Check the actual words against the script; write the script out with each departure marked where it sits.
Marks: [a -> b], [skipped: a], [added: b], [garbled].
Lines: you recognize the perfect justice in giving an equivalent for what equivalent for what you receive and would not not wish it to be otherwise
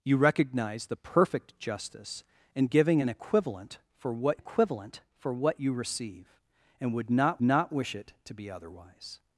you recognize the perfect justice in giving an equivalent for what equivalent for what you receive and would not not wish it to be otherwise